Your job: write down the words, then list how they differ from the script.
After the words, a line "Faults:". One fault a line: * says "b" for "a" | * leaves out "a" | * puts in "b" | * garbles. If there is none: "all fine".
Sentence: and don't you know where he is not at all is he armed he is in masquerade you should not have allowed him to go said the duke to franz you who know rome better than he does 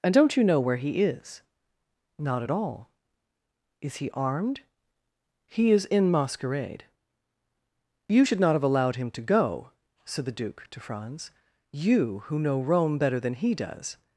and don't you know where he is not at all is he armed he is in masquerade you should not have allowed him to go said the duke to franz you who know rome better than he does
Faults:
all fine